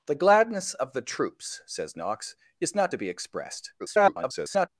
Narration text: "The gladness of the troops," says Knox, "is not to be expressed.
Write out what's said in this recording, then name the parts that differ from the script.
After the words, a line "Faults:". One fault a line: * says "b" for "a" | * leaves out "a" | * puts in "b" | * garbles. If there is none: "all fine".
"The gladness of the troops," says Knox, "is not to be expressed. [garbled]
Faults:
* garbles